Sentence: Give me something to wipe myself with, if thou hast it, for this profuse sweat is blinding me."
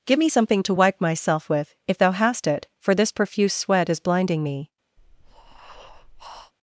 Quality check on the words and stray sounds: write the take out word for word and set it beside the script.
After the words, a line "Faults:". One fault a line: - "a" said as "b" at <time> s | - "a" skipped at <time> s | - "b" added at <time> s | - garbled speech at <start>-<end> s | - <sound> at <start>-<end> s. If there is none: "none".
Give me something to wipe myself with, if thou hast it, for this profuse sweat is blinding me."
Faults:
- breath at 5.0-6.5 s